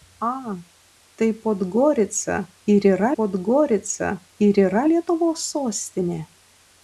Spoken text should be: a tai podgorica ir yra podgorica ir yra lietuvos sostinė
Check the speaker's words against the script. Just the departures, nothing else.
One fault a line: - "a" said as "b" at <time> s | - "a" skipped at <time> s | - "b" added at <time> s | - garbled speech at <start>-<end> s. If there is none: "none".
none